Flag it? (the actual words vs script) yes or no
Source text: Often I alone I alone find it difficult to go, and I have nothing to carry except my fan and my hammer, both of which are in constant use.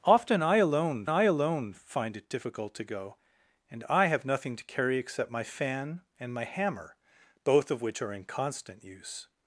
no